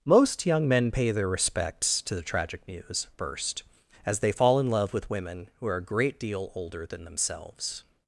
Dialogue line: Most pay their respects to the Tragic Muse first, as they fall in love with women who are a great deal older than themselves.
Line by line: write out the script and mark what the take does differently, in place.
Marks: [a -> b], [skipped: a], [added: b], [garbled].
Most [added: young men] pay their respects to the Tragic Muse first, as they fall in love with women who are a great deal older than themselves.